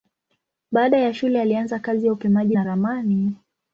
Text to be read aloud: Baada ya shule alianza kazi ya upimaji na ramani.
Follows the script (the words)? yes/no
yes